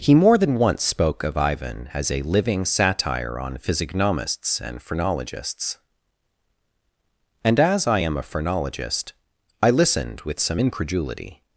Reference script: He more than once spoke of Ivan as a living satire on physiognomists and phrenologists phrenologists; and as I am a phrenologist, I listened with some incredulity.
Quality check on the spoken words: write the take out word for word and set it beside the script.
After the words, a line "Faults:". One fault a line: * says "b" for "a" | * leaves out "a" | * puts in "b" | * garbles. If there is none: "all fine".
He more than once spoke of Ivan as a living satire on physiognomists and phrenologists; and as I am a phrenologist, I listened with some incredulity.
Faults:
* leaves out "phrenologists"